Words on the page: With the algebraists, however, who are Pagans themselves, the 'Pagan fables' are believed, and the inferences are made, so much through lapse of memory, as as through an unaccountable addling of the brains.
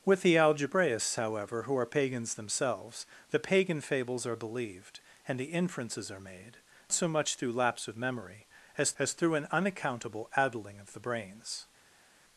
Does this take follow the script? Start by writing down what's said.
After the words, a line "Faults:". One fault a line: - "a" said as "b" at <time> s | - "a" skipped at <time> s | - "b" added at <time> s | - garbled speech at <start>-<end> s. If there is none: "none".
With the algebraists, however, who are Pagans themselves, the 'Pagan fables' are believed, and the inferences are made, so much through lapse of memory, as as through an unaccountable addling of the brains.
Faults:
none